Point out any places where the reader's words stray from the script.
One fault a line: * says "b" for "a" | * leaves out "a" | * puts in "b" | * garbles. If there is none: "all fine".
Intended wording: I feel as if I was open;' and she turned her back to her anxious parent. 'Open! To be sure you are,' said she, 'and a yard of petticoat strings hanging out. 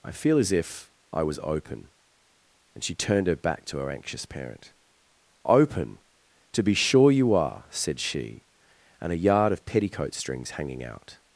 all fine